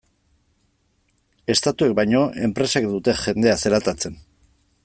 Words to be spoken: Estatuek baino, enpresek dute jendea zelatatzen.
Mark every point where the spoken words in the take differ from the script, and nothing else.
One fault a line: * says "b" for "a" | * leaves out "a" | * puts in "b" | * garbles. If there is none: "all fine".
all fine